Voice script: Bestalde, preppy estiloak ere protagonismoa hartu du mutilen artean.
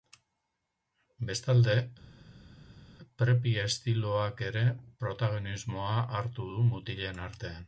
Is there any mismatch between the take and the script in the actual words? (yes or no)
no